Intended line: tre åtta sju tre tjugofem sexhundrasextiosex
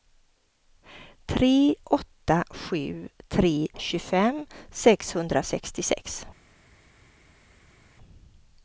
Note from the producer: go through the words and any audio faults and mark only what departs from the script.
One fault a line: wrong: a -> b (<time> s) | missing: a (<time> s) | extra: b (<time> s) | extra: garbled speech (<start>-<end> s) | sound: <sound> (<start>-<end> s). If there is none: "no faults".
no faults